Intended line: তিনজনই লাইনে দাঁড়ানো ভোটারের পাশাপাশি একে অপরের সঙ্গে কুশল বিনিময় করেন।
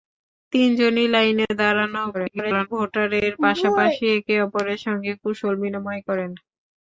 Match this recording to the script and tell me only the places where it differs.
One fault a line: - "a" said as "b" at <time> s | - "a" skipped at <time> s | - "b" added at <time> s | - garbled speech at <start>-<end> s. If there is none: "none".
- garbled speech at 2.1-2.7 s